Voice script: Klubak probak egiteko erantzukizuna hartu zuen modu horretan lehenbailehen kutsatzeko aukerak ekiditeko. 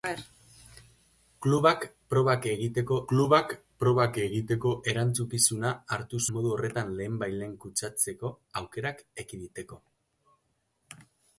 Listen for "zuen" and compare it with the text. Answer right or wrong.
wrong